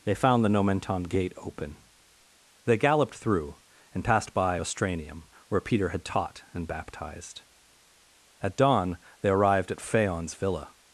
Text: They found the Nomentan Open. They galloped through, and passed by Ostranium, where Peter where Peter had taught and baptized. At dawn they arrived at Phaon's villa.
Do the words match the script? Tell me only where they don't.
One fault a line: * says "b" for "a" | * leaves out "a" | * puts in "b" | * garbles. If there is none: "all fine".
* puts in "Gate"
* leaves out "where Peter"